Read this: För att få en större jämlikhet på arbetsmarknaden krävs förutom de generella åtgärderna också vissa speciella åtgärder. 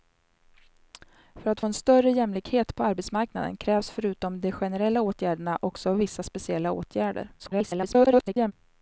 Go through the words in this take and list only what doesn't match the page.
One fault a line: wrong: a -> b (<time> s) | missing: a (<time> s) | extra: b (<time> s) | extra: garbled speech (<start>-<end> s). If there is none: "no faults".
extra: garbled speech (7.4-8.5 s)